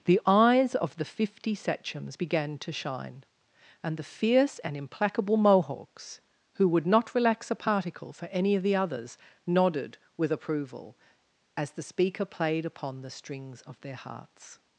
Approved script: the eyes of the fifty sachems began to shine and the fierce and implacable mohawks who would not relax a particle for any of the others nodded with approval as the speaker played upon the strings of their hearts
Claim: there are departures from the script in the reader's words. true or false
false